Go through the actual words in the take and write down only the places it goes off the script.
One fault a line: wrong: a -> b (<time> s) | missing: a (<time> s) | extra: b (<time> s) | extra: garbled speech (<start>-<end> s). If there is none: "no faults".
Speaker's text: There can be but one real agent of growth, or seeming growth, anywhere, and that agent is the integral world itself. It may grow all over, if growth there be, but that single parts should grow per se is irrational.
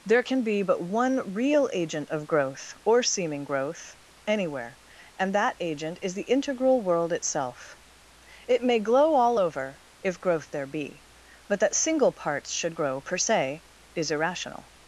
wrong: grow -> glow (8.8 s)